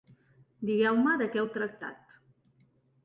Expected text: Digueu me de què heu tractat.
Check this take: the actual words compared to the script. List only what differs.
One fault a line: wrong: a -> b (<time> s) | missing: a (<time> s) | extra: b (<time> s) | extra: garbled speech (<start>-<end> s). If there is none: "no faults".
no faults